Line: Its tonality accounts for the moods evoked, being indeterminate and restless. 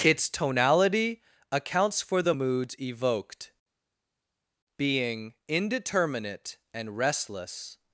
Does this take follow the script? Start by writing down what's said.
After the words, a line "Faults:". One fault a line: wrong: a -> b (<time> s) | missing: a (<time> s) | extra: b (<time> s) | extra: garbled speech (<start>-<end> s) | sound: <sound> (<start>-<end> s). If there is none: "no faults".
Its tonality accounts for the moods evoked, being indeterminate and restless.
Faults:
no faults